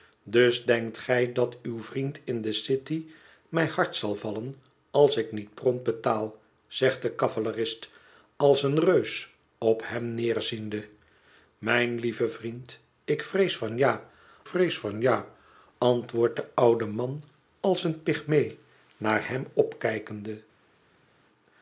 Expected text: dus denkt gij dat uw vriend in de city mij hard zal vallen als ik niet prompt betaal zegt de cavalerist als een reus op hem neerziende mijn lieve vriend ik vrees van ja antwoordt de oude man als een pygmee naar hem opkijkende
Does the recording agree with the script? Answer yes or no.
no